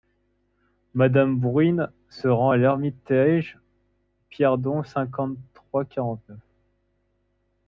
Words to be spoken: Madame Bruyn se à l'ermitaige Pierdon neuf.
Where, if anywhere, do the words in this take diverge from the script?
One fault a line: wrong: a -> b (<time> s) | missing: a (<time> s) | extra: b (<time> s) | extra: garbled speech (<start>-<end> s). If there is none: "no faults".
extra: rend (2.3 s)
extra: cinquante trois quarante (4.8 s)